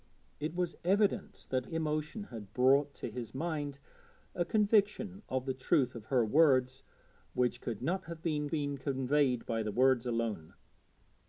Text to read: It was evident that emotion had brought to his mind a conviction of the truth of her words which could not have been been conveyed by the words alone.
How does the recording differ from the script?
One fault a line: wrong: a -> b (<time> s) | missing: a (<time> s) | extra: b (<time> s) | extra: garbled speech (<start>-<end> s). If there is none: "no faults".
no faults